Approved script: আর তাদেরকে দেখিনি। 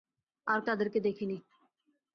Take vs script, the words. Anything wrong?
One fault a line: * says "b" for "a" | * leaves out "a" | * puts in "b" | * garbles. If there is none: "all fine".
all fine